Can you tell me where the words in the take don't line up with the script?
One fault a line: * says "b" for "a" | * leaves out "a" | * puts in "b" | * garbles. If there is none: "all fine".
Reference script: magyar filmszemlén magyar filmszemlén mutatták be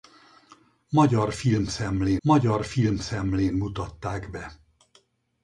all fine